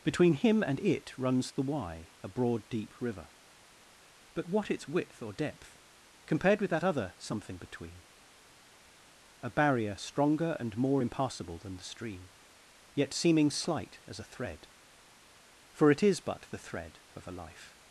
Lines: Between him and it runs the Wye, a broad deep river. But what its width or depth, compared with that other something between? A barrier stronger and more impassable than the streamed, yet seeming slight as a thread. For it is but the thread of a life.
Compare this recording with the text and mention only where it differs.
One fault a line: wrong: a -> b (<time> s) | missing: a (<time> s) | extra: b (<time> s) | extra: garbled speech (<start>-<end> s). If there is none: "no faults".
wrong: streamed -> stream (11.8 s)